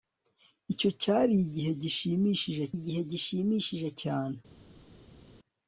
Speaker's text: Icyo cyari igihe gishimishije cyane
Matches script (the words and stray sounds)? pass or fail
fail